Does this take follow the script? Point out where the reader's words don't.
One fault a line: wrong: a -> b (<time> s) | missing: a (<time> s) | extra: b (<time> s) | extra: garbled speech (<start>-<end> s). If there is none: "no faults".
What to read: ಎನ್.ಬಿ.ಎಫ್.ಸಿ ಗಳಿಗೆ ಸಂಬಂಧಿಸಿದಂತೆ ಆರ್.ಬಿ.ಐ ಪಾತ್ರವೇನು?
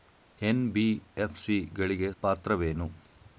missing: ಸಂಬಂಧಿಸಿದಂತೆ ಆರ್.ಬಿ.ಐ (2.1 s)